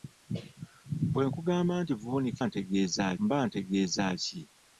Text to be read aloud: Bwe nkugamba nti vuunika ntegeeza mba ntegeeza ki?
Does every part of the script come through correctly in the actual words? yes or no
yes